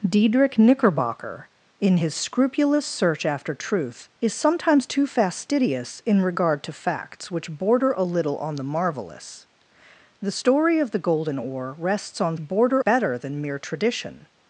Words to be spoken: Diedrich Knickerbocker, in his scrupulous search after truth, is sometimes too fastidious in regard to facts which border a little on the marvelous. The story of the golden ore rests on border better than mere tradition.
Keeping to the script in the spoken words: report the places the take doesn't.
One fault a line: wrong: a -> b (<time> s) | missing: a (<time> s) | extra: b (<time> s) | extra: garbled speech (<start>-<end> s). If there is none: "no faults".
no faults